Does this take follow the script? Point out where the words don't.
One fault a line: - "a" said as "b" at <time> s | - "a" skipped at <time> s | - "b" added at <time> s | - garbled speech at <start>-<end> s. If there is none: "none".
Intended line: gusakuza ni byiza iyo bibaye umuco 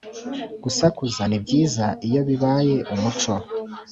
none